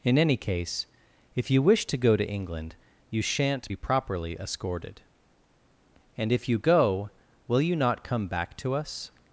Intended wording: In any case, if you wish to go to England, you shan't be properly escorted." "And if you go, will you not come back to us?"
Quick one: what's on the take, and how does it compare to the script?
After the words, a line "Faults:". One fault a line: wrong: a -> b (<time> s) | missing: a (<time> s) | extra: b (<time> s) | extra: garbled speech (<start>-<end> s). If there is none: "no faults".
In any case, if you wish to go to England, you shan't be properly escorted." "And if you go, will you not come back to us?"
Faults:
no faults